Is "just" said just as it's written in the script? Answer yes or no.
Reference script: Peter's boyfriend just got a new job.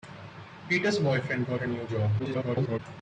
no